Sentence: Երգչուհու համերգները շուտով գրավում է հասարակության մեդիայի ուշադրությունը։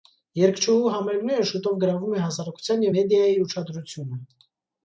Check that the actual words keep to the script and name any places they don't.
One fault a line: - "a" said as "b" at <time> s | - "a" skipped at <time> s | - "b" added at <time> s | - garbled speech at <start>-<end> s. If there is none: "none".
none